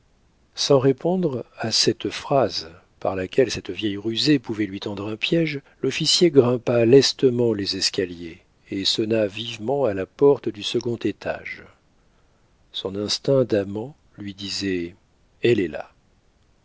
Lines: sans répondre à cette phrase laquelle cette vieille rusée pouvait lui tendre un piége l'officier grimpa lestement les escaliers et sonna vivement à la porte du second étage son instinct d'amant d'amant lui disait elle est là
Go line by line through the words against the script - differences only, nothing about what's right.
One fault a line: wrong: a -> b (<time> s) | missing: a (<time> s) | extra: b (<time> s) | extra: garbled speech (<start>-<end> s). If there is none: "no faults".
extra: par (3.0 s)
missing: d'amant (13.9 s)